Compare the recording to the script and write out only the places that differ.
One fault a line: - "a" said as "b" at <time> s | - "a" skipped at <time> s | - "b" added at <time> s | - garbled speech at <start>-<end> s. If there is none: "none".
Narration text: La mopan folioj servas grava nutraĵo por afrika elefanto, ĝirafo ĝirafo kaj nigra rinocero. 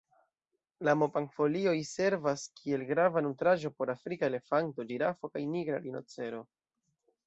- "kiel" added at 2.6 s
- "ĝirafo" skipped at 5.4 s